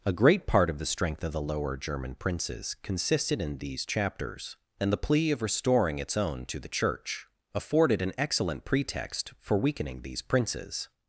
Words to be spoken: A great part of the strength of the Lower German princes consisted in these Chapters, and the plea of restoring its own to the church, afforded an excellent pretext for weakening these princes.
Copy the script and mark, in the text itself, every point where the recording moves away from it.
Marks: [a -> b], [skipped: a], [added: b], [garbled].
A great part of the strength of the Lower German princes consisted in these Chapters, and the plea of restoring its own to the church, afforded an excellent pretext for weakening these princes.